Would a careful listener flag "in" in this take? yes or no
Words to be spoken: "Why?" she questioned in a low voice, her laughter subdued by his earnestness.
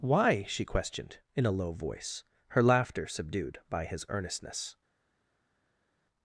no